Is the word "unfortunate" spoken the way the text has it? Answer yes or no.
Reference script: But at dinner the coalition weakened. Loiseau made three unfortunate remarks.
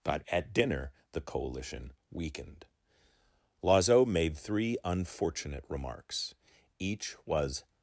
yes